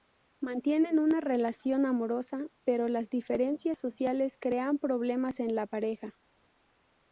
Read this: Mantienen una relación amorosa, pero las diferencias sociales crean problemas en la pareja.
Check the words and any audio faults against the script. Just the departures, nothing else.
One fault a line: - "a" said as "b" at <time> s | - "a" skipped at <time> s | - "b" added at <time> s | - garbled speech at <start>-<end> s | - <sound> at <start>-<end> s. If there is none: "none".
none